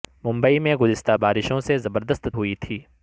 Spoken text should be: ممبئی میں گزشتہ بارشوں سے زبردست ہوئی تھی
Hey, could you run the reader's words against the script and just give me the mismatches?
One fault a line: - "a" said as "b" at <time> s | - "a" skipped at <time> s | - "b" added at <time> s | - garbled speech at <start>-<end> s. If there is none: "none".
none